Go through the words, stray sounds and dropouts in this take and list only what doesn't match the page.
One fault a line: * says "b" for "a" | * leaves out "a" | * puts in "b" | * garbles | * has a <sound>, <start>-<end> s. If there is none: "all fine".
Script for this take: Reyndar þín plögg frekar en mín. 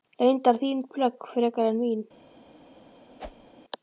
* has a whoosh, 3.2-3.5 s